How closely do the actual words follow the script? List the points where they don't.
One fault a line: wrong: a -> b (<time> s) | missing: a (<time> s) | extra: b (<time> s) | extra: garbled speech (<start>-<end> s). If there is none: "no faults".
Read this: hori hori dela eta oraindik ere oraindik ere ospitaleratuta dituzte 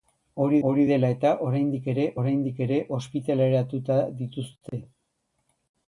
no faults